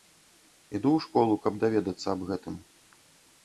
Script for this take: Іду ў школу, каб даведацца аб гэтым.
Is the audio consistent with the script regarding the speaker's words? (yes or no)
yes